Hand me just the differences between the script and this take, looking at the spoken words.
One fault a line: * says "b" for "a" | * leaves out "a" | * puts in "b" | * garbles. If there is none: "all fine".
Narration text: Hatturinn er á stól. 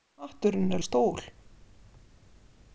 all fine